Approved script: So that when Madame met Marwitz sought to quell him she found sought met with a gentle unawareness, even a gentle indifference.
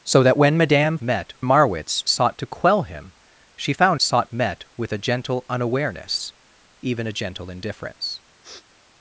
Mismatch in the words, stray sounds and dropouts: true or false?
true